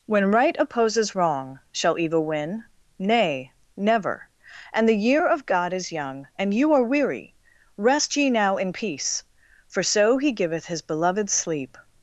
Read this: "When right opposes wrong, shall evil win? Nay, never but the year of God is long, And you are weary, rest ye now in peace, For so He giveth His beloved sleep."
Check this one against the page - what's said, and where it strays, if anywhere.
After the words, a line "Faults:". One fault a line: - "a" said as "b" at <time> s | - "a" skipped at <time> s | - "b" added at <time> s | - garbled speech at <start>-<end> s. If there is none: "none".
"When right opposes wrong, shall evil win? Nay, never and the year of God is young, And you are weary, rest ye now in peace, For so He giveth His beloved sleep."
Faults:
- "but" said as "and" at 4.7 s
- "long" said as "young" at 5.9 s